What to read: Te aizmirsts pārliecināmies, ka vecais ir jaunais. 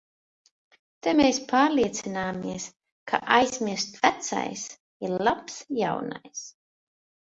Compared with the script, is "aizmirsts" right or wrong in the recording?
wrong